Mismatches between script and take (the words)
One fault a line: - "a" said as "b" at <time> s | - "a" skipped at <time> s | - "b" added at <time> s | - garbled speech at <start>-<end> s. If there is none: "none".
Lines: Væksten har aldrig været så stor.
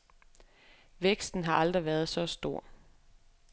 none